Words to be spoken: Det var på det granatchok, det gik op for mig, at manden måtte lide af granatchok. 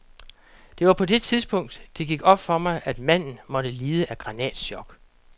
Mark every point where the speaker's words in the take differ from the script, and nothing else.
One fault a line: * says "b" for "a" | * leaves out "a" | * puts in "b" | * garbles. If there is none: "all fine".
* says "tidspunkt" for "granatchok"